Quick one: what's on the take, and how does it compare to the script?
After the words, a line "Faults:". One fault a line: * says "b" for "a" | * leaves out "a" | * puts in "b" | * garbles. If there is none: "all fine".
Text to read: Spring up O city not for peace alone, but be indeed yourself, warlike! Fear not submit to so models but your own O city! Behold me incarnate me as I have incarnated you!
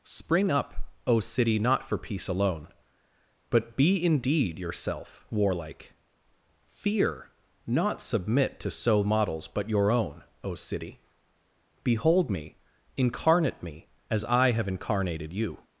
Spring up O city not for peace alone, but be indeed yourself, warlike! Fear not submit to so models but your own O city! Behold me incarnate me as I have incarnated you!
Faults:
all fine